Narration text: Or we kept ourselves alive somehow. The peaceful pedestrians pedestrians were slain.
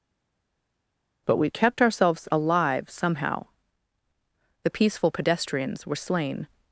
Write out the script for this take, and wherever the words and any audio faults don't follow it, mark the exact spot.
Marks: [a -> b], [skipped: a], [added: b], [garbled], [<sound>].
[Or -> But] we kept ourselves alive somehow. The peaceful pedestrians [skipped: pedestrians] were slain.